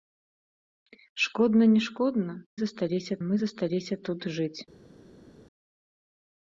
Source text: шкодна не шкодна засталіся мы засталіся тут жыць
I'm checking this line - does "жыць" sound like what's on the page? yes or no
yes